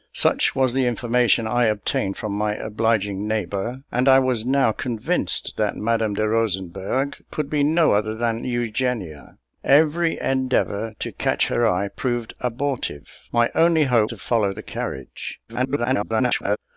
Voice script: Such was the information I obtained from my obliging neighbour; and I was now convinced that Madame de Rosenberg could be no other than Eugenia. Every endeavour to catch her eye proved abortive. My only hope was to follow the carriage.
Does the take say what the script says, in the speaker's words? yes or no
no